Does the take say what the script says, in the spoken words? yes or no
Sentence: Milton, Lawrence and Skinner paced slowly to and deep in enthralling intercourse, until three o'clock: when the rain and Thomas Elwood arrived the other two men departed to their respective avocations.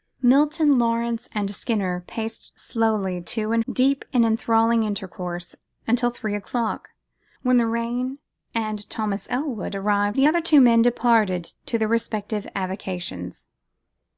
yes